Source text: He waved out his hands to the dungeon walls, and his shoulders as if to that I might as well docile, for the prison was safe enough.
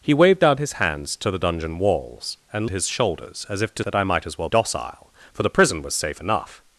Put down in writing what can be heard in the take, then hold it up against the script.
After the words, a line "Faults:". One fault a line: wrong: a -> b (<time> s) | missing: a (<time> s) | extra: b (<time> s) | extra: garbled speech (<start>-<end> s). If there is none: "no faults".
He waved out his hands to the dungeon walls, and his shoulders as if to that I might as well docile, for the prison was safe enough.
Faults:
no faults